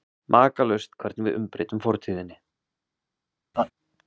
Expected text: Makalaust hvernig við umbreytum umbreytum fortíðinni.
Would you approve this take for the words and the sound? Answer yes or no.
no